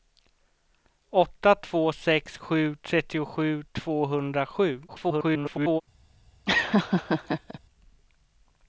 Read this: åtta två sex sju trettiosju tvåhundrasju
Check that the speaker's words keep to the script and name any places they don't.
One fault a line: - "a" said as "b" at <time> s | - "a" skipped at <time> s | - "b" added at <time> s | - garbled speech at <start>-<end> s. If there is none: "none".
- garbled speech at 4.9-5.8 s